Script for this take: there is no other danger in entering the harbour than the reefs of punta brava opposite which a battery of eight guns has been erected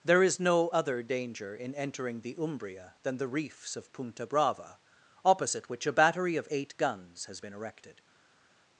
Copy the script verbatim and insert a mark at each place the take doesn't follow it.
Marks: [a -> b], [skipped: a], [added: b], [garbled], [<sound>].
there is no other danger in entering the [harbour -> umbria] than the reefs of punta brava opposite which a battery of eight guns has been erected